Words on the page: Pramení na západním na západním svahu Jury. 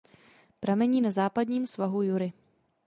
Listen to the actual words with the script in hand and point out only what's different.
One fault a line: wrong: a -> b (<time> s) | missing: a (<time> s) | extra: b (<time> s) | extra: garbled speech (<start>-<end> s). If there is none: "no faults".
missing: na západním (1.6 s)